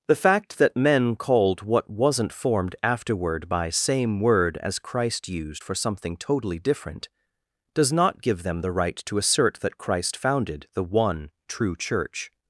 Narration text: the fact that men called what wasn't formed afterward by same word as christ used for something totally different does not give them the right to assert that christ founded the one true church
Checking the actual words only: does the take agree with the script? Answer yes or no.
yes